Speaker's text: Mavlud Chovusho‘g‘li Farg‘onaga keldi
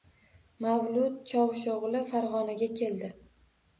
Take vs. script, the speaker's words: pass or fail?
pass